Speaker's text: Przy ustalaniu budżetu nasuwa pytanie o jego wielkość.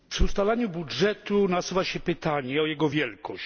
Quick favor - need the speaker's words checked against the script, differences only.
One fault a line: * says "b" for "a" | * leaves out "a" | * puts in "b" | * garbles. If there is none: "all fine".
* puts in "się"